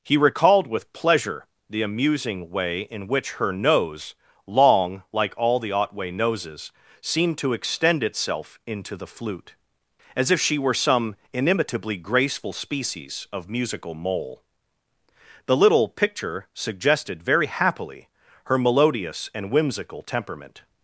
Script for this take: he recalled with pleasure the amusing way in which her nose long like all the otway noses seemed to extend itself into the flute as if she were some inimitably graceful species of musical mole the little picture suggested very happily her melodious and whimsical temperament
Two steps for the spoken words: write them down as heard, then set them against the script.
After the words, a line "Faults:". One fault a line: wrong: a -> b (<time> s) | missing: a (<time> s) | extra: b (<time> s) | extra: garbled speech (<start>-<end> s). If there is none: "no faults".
he recalled with pleasure the amusing way in which her nose long like all the otway noses seemed to extend itself into the flute as if she were some inimitably graceful species of musical mole the little picture suggested very happily her melodious and whimsical temperament
Faults:
no faults